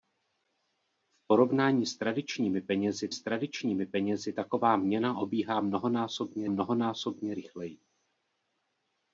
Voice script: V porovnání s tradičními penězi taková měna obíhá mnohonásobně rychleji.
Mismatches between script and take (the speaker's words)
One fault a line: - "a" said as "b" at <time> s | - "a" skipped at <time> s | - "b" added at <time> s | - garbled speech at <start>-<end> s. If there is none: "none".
- "s tradičními penězi" added at 3.1 s
- "mnohonásobně" added at 6.5 s